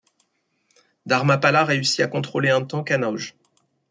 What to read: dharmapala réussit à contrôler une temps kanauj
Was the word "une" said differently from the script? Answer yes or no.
yes